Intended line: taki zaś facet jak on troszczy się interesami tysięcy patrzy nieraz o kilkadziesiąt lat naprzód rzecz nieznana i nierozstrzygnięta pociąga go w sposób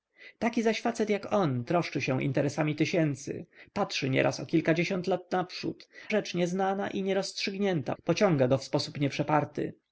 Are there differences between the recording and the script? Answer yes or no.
no